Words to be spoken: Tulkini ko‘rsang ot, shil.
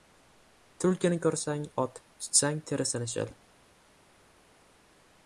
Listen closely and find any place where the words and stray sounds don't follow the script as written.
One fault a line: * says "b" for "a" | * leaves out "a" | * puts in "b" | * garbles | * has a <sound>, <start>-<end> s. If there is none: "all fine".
* puts in "tutsang terisini"